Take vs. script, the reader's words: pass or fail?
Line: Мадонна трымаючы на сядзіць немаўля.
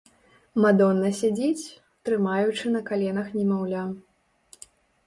fail